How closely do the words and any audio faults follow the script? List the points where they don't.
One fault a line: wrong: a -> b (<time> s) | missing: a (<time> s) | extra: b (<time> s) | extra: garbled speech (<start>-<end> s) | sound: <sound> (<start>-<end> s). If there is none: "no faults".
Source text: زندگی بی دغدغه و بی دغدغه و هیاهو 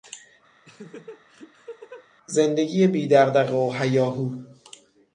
sound: laugh (0.6-2.1 s)
missing: بی دغدغه و (3.7 s)